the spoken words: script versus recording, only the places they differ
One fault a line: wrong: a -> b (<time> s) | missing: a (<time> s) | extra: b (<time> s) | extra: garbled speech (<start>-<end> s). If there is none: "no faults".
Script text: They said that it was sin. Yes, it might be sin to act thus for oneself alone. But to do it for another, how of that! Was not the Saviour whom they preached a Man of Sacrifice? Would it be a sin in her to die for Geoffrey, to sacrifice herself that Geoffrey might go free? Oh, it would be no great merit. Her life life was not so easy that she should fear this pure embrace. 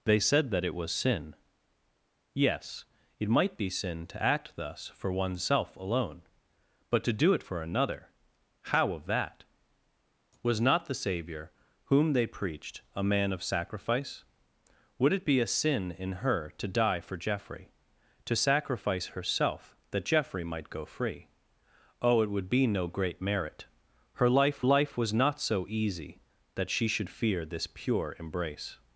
no faults